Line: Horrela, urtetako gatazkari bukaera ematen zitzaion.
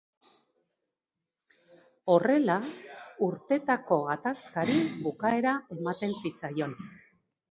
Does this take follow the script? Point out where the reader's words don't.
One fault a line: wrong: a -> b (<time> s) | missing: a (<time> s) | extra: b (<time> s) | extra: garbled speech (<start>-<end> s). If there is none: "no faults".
no faults